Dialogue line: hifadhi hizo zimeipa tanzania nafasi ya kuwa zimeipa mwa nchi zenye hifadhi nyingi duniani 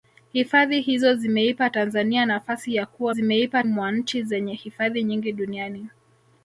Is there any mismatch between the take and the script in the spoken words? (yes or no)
no